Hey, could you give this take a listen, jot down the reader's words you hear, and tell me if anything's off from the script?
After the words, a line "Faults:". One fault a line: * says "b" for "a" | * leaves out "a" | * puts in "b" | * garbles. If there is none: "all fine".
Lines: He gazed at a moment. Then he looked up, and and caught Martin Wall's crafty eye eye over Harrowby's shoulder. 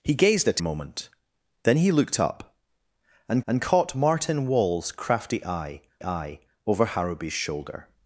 He gazed at a moment. Then he looked up, and and caught Martin Wall's crafty eye eye over Harrowby's shoulder.
Faults:
all fine